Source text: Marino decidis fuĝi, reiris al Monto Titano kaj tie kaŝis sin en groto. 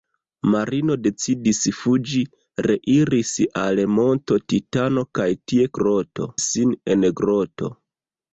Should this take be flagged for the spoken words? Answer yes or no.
yes